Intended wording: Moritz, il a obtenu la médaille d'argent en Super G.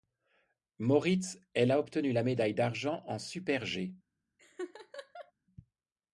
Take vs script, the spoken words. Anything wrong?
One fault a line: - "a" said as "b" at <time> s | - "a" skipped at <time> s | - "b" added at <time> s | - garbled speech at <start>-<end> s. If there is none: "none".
- "il" said as "elle" at 1.5 s